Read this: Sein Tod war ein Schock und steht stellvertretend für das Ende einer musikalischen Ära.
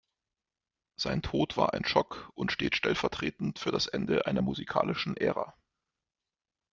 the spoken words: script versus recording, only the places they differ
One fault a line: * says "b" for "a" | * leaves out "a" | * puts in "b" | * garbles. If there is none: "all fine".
all fine